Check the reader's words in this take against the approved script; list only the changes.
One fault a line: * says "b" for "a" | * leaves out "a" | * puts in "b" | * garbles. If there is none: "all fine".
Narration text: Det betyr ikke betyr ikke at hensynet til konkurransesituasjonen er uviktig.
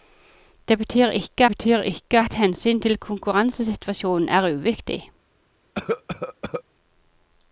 all fine